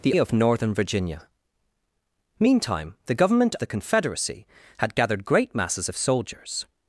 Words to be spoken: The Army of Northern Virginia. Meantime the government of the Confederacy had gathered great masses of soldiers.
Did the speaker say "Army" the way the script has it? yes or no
no